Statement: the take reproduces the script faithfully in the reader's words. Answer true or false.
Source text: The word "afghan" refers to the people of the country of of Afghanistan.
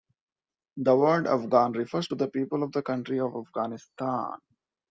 false